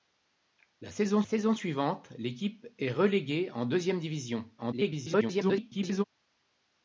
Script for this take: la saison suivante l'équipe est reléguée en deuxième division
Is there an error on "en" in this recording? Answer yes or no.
no